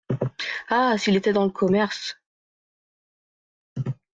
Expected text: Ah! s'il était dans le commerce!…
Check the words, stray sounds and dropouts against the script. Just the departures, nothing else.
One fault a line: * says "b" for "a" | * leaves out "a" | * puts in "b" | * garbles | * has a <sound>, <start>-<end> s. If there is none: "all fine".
all fine